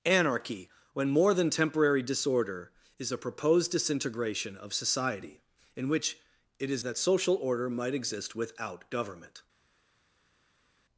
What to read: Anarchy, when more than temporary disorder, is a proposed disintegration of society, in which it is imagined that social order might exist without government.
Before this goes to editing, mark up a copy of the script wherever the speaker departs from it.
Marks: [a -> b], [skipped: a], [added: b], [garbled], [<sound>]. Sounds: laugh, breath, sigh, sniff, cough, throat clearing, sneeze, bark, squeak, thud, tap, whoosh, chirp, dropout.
Anarchy, when more than temporary disorder, is a proposed disintegration of society, in which it is [skipped: imagined] that social order might exist without government.